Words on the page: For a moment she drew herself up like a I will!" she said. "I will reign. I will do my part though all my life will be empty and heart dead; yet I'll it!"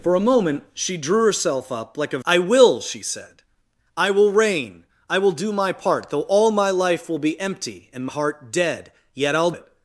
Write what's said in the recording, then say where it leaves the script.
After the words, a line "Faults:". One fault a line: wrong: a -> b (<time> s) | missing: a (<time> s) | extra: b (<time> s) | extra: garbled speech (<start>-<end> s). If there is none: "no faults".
For a moment she drew herself up like a I will!" she said. "I will reign. I will do my part though all my life will be empty and heart dead; yet I'll it!"
Faults:
no faults